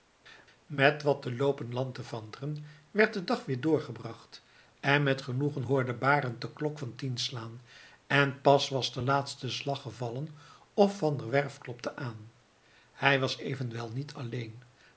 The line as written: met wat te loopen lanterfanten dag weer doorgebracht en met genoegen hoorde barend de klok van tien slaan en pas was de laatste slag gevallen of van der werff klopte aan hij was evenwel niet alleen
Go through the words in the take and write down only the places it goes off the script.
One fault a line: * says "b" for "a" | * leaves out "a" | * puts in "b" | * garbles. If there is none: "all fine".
* puts in "werd de"